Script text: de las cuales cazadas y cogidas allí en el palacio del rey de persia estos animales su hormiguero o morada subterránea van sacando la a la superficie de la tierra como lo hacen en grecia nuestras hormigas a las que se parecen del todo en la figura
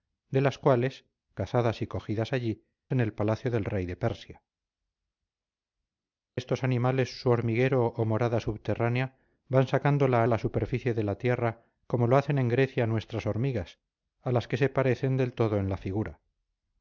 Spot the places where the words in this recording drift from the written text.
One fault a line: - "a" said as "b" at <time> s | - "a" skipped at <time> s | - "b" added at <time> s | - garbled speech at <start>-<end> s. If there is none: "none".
none